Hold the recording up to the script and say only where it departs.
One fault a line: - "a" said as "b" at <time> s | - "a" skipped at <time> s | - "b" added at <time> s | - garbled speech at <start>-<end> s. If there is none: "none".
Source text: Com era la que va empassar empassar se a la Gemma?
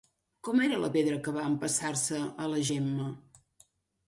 - "pedra" added at 0.9 s
- "empassar" skipped at 1.9 s